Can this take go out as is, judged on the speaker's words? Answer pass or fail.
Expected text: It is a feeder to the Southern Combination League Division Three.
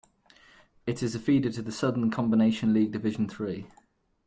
pass